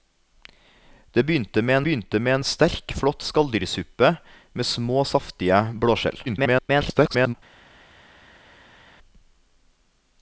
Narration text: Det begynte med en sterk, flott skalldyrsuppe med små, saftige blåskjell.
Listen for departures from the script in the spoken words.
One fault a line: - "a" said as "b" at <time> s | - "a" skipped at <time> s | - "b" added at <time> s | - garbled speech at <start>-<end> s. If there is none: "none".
- "begynte med" added at 1.8 s
- garbled speech at 6.3-7.3 s